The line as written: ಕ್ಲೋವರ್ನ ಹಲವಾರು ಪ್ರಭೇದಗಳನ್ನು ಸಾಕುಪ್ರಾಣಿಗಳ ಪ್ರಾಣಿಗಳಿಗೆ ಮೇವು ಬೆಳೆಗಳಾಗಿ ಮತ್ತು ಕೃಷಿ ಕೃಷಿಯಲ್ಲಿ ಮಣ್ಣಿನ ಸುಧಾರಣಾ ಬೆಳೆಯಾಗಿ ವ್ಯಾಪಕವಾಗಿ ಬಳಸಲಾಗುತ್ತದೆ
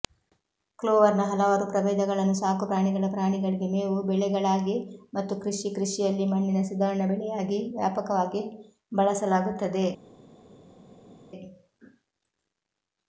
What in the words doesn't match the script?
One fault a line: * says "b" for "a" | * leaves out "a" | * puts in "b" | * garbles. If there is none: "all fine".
all fine